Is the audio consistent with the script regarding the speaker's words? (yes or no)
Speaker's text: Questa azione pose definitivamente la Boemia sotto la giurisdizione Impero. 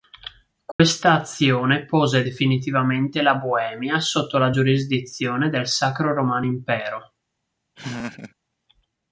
no